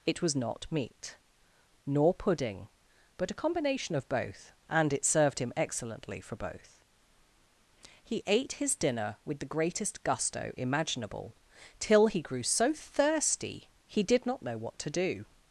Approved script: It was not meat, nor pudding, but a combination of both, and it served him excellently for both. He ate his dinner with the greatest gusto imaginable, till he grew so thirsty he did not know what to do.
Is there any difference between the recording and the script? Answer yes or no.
no